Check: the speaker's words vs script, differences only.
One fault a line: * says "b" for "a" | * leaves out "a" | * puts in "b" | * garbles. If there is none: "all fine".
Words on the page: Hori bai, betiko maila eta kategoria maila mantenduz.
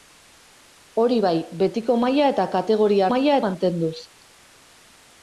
all fine